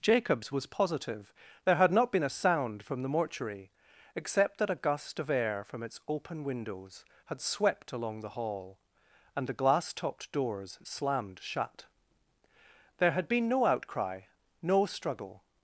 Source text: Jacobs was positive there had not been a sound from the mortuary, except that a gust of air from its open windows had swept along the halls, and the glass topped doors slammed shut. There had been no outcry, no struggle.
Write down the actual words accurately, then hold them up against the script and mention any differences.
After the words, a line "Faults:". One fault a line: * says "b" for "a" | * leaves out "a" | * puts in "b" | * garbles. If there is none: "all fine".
Jacobs was positive there had not been a sound from the mortuary, except that a gust of air from its open windows had swept along the hall, and the glass topped doors slammed shut. There had been no outcry, no struggle.
Faults:
* says "hall" for "halls"